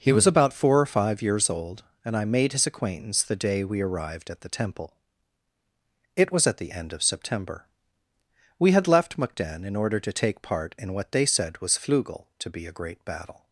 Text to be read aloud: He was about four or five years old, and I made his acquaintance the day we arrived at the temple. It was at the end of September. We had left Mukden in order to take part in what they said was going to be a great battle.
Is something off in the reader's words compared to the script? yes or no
yes